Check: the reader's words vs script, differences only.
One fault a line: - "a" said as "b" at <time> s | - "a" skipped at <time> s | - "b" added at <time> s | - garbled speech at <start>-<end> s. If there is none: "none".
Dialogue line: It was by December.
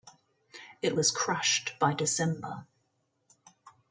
- "crushed" added at 1.1 s